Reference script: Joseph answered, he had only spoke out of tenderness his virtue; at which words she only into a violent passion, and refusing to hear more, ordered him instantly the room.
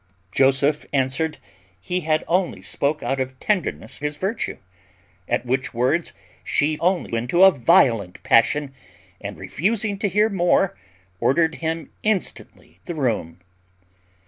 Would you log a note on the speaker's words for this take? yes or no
no